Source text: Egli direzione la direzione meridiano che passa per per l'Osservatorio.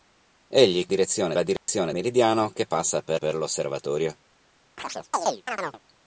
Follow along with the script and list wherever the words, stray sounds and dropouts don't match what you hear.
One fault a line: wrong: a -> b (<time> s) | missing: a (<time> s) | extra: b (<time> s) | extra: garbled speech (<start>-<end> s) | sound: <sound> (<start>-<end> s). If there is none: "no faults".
sound: dropout (1.6-1.7 s)
sound: chirp (4.8-5.8 s)